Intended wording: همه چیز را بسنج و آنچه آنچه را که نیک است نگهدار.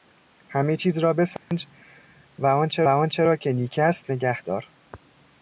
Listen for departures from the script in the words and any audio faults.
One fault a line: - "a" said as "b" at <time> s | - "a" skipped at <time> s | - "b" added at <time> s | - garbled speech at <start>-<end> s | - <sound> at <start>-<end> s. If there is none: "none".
- dropout at 1.4-1.5 s